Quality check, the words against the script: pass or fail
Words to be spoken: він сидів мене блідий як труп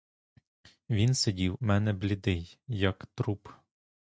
pass